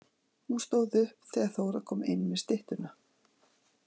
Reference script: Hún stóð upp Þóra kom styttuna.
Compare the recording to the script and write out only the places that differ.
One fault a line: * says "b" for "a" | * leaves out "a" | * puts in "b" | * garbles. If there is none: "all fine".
* puts in "þegar"
* puts in "inn með"